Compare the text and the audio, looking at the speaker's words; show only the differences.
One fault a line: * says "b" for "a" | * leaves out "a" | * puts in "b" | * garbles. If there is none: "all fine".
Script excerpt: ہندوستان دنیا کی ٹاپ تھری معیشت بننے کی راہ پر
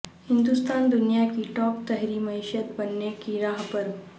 all fine